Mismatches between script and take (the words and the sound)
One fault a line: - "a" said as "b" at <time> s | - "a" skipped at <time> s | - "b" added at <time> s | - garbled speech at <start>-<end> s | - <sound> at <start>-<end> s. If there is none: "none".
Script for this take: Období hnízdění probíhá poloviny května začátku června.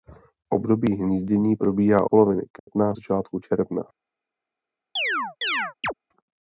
- dropout at 2.6-2.7 s
- chirp at 5.0-5.9 s